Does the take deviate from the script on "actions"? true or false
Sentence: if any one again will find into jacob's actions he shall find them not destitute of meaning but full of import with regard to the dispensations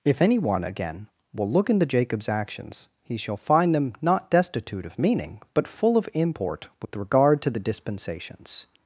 false